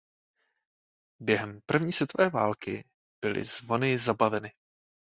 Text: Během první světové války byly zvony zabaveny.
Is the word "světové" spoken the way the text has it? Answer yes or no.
yes